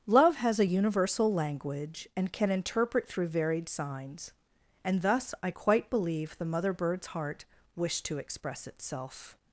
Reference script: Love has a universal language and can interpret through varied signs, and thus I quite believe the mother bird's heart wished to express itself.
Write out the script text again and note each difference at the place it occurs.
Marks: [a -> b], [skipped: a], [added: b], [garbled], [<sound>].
Love has a universal language and can interpret through varied signs, and thus I quite believe the mother bird's heart wished to express itself.